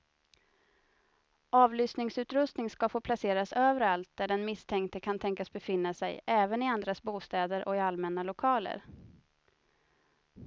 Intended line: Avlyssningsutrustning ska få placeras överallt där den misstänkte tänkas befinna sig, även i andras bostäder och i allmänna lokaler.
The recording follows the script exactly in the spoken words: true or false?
false